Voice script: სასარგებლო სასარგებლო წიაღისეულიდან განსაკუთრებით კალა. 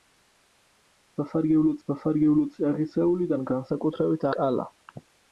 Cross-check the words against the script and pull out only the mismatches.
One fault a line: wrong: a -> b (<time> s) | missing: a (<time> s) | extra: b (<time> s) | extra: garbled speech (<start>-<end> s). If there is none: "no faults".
no faults